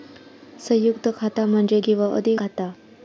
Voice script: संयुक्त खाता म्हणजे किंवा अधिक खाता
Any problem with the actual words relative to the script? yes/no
no